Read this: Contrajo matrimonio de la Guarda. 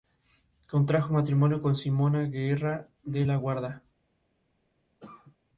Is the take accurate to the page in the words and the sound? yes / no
no